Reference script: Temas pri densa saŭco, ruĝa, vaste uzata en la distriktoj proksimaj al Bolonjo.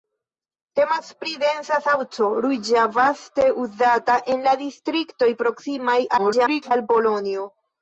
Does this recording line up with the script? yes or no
no